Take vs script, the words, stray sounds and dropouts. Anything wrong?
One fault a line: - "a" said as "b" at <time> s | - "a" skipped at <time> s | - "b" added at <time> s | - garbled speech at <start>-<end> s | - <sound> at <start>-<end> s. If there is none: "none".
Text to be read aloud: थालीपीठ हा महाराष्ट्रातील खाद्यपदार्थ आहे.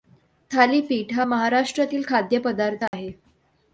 - dropout at 2.9-2.9 s